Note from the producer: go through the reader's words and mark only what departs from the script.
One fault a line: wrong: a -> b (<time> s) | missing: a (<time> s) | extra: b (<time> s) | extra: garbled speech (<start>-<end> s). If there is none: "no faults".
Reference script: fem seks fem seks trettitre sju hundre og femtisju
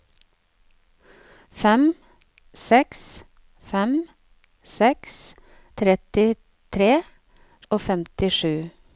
missing: sju hundre (6.9 s)